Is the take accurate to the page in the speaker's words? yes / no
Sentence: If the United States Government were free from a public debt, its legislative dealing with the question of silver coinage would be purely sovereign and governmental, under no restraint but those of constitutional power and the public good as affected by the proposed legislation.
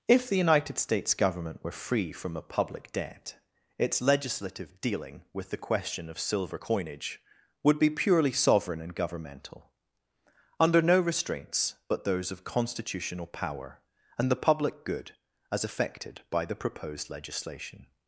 no